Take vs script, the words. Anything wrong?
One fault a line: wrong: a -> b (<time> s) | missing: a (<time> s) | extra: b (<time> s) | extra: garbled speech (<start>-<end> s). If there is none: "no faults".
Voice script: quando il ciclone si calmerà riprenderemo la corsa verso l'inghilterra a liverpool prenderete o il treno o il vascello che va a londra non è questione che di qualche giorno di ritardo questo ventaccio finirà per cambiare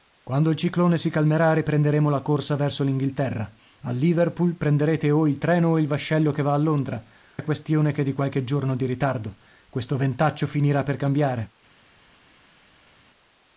missing: non (7.0 s)